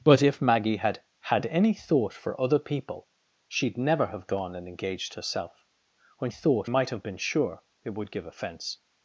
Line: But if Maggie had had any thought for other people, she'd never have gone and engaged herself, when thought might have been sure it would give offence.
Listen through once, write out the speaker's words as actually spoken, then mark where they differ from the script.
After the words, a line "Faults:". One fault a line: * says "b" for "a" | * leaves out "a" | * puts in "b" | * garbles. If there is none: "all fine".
But if Maggie had had any thought for other people, she'd never have gone and engaged herself, when thought might have been sure it would give offence.
Faults:
all fine